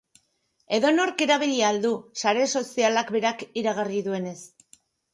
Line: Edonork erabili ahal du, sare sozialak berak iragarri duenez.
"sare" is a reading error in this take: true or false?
false